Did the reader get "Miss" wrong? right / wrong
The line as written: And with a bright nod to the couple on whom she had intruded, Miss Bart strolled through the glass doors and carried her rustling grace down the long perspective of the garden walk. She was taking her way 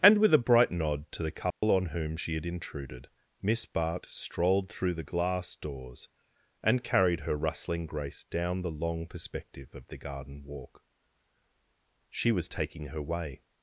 right